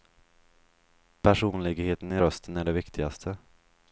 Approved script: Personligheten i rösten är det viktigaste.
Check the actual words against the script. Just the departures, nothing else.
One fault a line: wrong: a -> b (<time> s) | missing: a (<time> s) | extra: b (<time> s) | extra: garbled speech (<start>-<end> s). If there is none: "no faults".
no faults